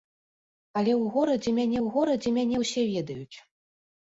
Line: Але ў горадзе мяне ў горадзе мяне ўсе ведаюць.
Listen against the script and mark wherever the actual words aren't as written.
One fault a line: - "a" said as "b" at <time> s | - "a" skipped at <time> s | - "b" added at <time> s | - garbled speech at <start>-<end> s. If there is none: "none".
none